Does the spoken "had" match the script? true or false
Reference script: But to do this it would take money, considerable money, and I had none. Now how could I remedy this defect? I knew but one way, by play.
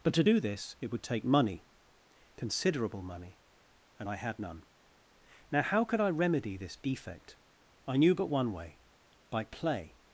true